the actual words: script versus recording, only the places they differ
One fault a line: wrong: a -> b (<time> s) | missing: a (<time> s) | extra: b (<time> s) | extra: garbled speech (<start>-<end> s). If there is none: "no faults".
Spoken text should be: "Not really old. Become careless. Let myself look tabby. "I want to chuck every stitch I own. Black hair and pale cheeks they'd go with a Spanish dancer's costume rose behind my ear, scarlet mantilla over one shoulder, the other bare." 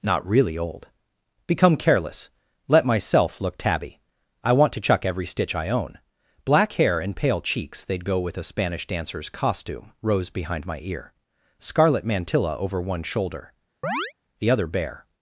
no faults